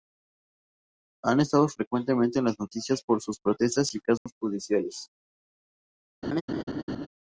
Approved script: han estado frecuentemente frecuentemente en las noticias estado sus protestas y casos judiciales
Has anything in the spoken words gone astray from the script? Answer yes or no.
yes